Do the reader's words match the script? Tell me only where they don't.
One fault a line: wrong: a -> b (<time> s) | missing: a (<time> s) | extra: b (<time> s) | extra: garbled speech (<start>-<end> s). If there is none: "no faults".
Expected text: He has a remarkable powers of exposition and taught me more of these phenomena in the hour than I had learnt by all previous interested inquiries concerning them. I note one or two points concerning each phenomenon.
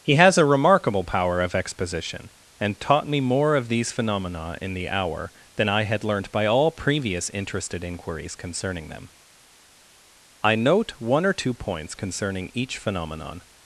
wrong: powers -> power (1.0 s)